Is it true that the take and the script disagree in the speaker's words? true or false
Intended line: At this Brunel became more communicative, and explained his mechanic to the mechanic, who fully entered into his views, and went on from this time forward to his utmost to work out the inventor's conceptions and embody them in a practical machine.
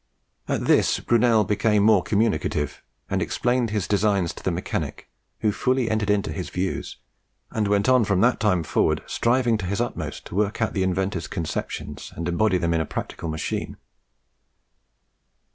true